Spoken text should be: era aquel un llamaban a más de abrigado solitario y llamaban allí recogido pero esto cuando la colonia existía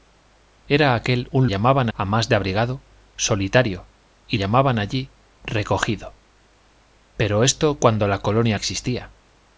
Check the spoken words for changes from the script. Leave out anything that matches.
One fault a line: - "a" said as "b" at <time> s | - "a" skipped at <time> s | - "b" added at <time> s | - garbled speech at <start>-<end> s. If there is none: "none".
none